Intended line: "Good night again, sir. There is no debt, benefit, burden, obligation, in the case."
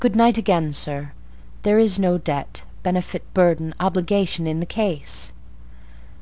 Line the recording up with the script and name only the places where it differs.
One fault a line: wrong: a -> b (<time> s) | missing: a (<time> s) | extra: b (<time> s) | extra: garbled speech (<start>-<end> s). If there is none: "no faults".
no faults